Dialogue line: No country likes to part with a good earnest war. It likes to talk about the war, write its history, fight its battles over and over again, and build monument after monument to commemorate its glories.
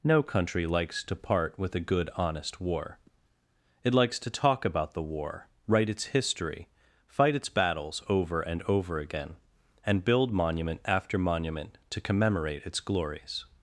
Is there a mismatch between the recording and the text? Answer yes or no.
yes